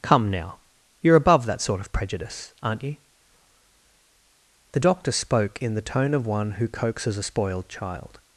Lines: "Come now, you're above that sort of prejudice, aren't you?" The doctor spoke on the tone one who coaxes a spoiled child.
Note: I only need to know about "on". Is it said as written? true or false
false